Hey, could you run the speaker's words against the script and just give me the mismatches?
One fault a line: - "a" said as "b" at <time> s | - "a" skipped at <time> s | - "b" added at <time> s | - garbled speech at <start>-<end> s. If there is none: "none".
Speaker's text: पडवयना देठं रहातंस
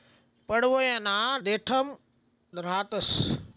none